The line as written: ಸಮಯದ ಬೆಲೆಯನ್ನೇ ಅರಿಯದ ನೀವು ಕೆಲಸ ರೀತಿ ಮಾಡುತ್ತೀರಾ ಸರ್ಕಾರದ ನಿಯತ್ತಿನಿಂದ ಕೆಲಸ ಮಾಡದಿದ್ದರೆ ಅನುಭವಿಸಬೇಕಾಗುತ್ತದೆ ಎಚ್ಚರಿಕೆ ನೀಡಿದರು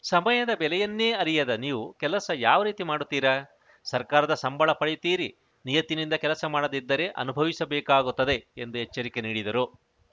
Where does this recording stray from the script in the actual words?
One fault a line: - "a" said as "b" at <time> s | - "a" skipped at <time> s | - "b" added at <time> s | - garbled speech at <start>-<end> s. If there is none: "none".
- "ಯಾವ" added at 2.4 s
- "ಸಂಬಳ ಪಡೆಯುತ್ತೀರಿ" added at 4.3 s
- "ಎಂದು" added at 8.6 s